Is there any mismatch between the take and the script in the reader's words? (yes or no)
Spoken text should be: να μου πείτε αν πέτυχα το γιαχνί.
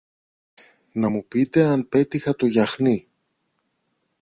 no